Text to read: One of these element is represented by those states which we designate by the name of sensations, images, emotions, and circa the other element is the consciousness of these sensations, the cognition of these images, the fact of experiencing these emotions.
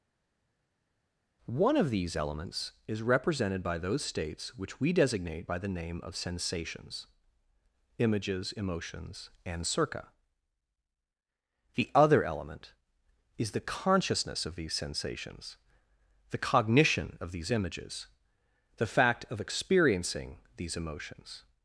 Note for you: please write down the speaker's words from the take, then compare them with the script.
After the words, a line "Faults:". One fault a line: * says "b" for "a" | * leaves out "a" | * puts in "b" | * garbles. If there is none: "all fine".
One of these elements is represented by those states which we designate by the name of sensations, images, emotions, and circa the other element is the consciousness of these sensations, the cognition of these images, the fact of experiencing these emotions.
Faults:
* says "elements" for "element"